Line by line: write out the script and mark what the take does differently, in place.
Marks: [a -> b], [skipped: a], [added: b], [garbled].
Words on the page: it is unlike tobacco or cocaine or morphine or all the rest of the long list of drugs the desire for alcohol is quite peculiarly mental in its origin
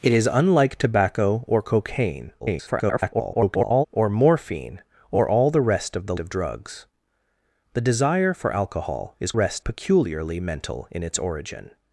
it is unlike tobacco or cocaine [garbled] or morphine or all the rest of the [skipped: long list] of drugs the desire for alcohol is [quite -> rest] peculiarly mental in its origin